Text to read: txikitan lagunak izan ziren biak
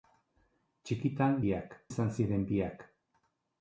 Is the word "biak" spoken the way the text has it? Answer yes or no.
yes